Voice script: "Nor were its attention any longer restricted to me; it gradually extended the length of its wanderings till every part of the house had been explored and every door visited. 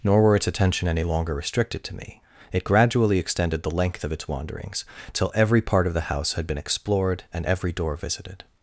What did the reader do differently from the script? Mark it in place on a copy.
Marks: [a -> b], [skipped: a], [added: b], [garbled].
"Nor were its attention any longer restricted to me; it gradually extended the length of its wanderings till every part of the house had been explored and every door visited.